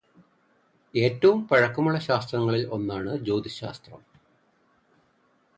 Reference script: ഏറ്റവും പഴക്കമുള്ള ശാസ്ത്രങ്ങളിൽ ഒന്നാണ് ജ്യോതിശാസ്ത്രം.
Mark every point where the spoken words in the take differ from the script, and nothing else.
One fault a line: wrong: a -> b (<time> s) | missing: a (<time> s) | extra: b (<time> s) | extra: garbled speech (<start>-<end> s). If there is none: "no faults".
no faults